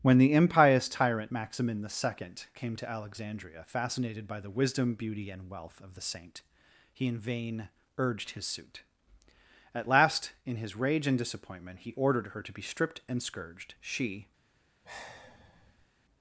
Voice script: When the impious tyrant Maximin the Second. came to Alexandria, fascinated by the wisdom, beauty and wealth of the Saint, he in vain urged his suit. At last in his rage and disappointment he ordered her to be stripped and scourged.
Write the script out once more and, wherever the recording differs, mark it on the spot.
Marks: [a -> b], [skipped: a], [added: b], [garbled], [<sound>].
When the impious tyrant Maximin the Second. came to Alexandria, fascinated by the wisdom, beauty and wealth of the Saint, he in vain urged his suit. At last in his rage and disappointment he ordered her to be stripped and scourged. [added: She] [sigh]